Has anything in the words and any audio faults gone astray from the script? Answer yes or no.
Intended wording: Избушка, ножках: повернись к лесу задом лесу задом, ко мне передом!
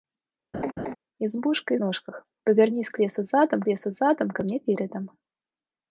yes